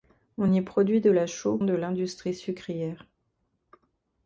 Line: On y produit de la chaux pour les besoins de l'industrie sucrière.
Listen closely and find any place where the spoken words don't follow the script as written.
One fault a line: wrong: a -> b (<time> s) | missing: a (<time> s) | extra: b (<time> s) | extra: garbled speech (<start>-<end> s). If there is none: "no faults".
missing: pour les besoins (1.6 s)